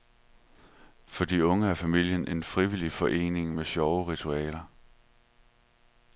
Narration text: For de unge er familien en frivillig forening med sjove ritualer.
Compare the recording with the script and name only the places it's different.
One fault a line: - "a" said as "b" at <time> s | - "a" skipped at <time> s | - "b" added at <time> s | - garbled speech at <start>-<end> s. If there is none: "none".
none